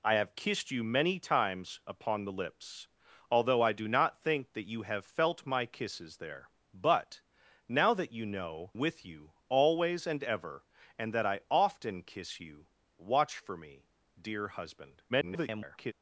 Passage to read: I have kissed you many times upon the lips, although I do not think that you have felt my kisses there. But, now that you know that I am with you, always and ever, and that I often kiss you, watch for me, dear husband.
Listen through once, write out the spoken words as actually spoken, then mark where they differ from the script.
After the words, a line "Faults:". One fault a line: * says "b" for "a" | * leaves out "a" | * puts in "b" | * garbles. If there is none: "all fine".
I have kissed you many times upon the lips, although I do not think that you have felt my kisses there. But, now that you know with you, always and ever, and that I often kiss you, watch for me, dear husband. [garbled]
Faults:
* leaves out "that I am"
* garbles